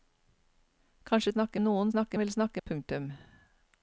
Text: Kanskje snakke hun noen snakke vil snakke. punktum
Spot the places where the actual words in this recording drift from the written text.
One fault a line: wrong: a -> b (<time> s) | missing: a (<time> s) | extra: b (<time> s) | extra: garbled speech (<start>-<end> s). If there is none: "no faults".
no faults